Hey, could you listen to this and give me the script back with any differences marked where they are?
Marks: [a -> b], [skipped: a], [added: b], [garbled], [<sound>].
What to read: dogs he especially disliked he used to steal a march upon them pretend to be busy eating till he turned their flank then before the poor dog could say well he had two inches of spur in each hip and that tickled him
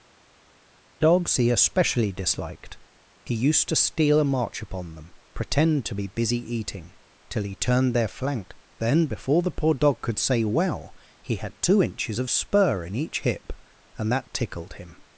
dogs he especially disliked he used to steal a march upon them pretend to be busy eating till he turned their flank then before the poor dog could say well he had two inches of spur in each hip and that tickled him